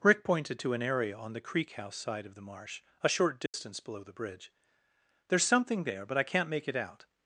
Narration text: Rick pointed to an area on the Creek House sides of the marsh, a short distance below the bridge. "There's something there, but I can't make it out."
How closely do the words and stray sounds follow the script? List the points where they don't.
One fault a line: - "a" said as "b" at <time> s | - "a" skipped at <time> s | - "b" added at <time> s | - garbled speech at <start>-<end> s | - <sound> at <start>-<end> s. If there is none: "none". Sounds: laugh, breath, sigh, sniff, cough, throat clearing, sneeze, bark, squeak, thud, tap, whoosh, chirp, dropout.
- "sides" said as "side" at 1.9 s
- dropout at 3.5-3.5 s